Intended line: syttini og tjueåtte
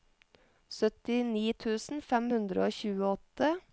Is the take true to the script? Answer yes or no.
no